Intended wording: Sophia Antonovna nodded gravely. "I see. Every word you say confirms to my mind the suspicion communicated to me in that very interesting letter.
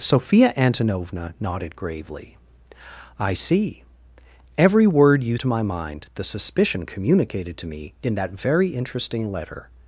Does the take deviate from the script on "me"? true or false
false